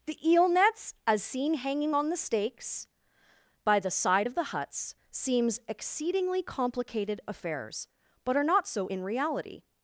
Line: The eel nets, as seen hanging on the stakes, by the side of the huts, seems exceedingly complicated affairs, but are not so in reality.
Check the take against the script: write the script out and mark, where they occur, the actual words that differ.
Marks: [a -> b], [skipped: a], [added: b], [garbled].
The eel nets, as seen hanging on the stakes, by the side of the huts, seems exceedingly complicated affairs, but are not so in reality.